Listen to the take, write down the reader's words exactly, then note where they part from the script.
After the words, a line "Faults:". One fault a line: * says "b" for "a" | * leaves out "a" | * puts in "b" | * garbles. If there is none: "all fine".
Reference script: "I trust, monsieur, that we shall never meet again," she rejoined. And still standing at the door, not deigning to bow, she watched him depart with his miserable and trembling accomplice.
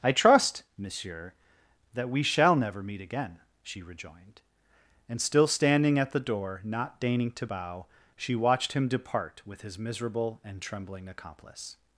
"I trust, monsieur, that we shall never meet again," she rejoined. And still standing at the door, not deigning to bow, she watched him depart with his miserable and trembling accomplice.
Faults:
all fine